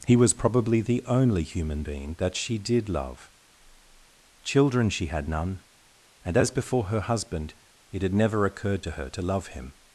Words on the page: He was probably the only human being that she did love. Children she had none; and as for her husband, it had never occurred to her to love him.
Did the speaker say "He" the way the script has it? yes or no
yes